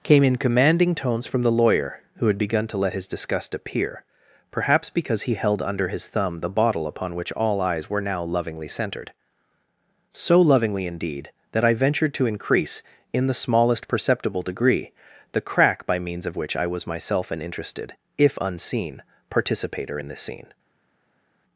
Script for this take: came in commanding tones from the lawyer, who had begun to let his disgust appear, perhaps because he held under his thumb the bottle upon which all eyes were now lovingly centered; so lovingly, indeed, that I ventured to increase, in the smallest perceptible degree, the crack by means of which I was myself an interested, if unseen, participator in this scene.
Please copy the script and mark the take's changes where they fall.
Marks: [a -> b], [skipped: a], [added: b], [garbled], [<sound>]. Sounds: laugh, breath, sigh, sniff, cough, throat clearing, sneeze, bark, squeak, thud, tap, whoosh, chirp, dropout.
came in commanding tones from the lawyer, who had begun to let his disgust appear, perhaps because he held under his thumb the bottle upon which all eyes were now lovingly centered; so lovingly, indeed, that I ventured to increase, in the smallest perceptible degree, the crack by means of which I was myself an interested, if unseen, participator in this scene.